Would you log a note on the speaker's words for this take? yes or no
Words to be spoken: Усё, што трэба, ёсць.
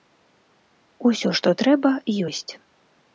no